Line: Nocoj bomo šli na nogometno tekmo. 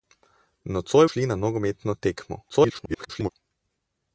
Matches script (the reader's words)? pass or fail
fail